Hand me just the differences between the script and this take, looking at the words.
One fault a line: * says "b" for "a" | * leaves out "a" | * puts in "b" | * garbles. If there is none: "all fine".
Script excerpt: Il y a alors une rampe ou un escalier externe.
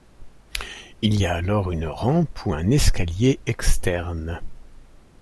all fine